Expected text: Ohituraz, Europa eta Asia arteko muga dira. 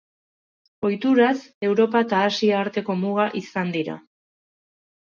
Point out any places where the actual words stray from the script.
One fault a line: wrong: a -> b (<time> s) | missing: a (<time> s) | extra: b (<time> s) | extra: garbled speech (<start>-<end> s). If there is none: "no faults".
extra: izan (3.5 s)